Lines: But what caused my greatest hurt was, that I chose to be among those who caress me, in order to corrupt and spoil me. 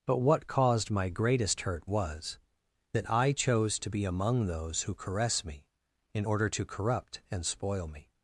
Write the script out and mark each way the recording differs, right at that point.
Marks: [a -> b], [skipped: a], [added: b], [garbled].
But what caused my greatest hurt was, that I chose to be among those who caress me, in order to corrupt and spoil me.